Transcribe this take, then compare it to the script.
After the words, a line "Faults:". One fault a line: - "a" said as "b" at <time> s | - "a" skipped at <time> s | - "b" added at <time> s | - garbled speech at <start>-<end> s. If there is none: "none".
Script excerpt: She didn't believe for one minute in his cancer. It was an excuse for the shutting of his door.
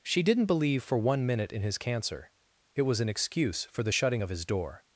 She didn't believe for one minute in his cancer. It was an excuse for the shutting of his door.
Faults:
none